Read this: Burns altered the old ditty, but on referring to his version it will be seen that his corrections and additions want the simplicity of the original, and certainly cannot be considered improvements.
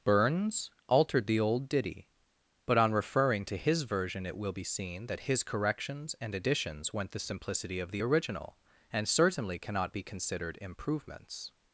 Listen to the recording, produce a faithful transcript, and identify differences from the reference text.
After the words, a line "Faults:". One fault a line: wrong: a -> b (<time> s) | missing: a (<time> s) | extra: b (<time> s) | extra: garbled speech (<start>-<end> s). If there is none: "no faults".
Burns altered the old ditty, but on referring to his version it will be seen that his corrections and additions went the simplicity of the original, and certainly cannot be considered improvements.
Faults:
wrong: want -> went (6.9 s)